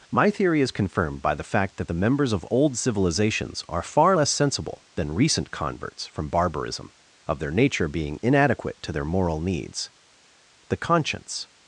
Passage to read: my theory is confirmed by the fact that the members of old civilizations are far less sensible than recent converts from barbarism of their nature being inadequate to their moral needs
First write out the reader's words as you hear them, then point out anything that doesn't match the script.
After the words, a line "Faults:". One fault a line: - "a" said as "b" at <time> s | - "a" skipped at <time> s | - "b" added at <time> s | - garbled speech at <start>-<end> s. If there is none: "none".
my theory is confirmed by the fact that the members of old civilizations are far less sensible than recent converts from barbarism of their nature being inadequate to their moral needs the conscience
Faults:
- "the conscience" added at 10.7 s